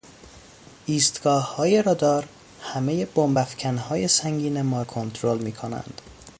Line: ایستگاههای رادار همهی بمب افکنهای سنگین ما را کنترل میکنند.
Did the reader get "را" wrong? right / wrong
wrong